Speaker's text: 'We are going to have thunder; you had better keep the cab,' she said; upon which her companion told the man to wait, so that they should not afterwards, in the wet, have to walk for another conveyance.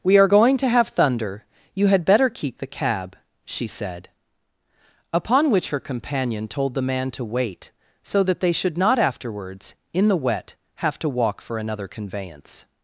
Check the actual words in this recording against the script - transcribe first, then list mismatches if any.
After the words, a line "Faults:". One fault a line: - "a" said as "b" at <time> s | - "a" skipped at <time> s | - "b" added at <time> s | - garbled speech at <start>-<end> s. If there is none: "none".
'We are going to have thunder; you had better keep the cab,' she said; upon which her companion told the man to wait, so that they should not afterwards, in the wet, have to walk for another conveyance.
Faults:
none